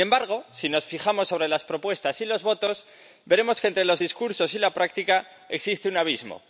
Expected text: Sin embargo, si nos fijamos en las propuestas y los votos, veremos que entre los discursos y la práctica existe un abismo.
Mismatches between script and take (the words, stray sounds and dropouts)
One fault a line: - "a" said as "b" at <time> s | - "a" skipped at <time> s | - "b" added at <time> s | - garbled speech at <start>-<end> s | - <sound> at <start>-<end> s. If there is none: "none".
none